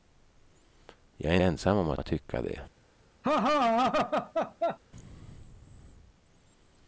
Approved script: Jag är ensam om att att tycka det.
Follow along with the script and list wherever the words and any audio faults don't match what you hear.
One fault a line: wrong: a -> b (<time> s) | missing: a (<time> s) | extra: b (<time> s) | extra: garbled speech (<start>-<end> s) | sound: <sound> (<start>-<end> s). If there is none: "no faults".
sound: laugh (3.2-4.8 s)